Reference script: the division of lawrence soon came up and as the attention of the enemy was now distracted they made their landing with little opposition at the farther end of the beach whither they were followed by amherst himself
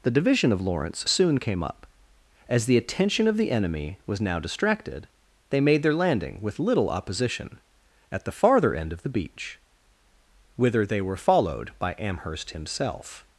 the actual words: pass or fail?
fail